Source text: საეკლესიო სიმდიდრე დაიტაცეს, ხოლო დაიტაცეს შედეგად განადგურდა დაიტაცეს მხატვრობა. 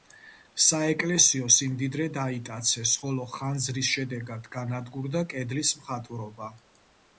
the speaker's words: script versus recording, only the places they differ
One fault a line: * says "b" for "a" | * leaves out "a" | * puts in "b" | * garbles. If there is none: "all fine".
* says "ხანძრის" for "დაიტაცეს"
* says "კედლის" for "დაიტაცეს"